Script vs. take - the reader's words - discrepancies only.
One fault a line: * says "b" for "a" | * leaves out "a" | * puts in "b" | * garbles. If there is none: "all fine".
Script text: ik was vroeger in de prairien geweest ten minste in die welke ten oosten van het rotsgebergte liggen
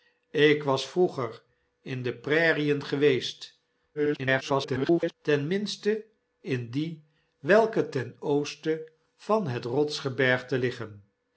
* garbles